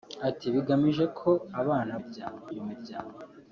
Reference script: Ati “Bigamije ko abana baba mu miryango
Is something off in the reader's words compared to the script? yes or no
yes